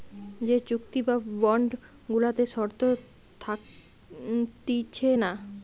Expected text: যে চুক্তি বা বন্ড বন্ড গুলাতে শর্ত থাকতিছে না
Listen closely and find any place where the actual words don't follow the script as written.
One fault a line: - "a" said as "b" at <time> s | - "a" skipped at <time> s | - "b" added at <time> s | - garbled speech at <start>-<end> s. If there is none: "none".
- "বন্ড" skipped at 1.7 s